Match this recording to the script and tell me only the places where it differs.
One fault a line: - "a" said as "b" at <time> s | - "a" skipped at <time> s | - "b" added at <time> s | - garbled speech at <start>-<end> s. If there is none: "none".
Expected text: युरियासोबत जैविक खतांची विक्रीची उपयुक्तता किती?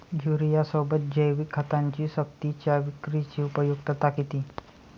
- "सक्तीच्या" added at 2.1 s